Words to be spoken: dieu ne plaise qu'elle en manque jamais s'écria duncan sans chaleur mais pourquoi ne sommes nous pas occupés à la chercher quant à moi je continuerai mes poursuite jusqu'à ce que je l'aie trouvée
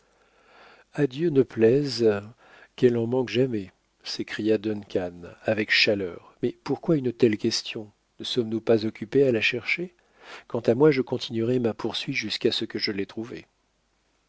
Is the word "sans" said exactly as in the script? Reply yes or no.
no